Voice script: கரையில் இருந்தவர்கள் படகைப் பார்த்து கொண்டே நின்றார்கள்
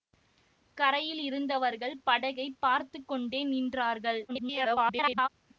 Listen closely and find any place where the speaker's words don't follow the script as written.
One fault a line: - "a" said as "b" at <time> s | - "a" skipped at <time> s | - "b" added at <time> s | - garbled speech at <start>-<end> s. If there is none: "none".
- garbled speech at 4.3-5.3 s